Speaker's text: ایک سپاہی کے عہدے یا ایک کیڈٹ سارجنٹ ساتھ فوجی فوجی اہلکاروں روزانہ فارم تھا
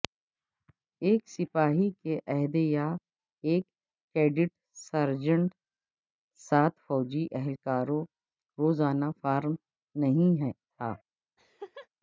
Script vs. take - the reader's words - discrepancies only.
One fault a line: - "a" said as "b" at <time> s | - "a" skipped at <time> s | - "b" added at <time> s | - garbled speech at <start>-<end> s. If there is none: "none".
- "فوجی" skipped at 7.2 s
- "نہیں" added at 10.0 s